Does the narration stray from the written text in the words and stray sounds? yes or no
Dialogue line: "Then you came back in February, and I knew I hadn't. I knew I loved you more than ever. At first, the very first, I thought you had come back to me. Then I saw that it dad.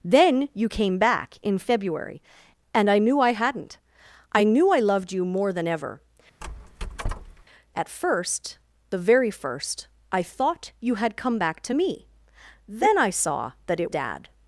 yes